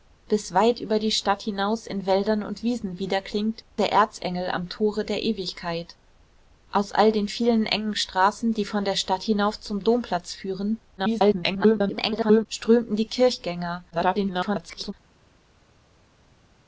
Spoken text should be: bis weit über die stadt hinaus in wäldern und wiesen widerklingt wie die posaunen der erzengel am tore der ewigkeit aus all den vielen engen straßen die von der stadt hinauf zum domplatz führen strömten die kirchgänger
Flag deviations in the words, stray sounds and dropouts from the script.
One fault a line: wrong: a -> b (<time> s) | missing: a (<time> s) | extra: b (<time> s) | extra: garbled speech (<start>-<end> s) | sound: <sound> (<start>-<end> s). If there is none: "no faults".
missing: wie die posaunen (3.6 s)
extra: garbled speech (11.0-12.5 s)
extra: garbled speech (13.9-14.9 s)